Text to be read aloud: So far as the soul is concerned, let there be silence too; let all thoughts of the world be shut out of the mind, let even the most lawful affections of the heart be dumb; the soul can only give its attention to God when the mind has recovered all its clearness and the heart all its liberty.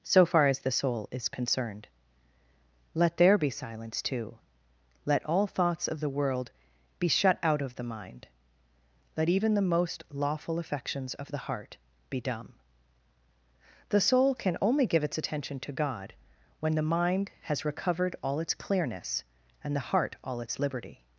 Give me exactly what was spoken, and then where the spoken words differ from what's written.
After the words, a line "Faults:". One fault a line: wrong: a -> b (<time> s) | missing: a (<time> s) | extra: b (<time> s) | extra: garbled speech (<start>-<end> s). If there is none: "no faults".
So far as the soul is concerned, let there be silence too; let all thoughts of the world be shut out of the mind, let even the most lawful affections of the heart be dumb; the soul can only give its attention to God when the mind has recovered all its clearness and the heart all its liberty.
Faults:
no faults